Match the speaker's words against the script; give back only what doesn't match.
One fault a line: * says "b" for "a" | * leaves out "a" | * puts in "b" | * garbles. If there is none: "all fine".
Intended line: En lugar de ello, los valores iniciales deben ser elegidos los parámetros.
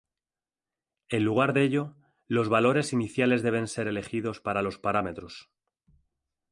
* puts in "para"